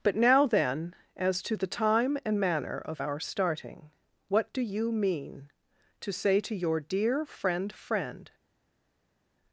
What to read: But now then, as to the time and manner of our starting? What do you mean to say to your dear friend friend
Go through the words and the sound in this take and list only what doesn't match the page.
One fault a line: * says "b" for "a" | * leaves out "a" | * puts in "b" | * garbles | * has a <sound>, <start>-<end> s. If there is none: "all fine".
all fine